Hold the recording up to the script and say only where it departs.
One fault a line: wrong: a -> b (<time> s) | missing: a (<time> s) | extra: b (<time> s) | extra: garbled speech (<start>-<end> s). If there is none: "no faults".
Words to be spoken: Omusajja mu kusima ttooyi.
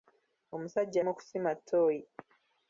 no faults